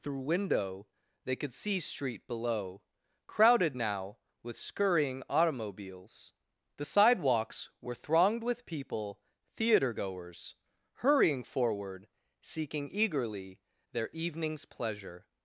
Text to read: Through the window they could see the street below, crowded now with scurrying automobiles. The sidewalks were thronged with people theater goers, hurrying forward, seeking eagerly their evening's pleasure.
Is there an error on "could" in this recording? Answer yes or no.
no